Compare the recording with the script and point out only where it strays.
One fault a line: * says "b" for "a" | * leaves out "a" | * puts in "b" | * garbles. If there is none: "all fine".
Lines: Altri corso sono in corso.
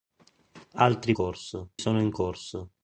all fine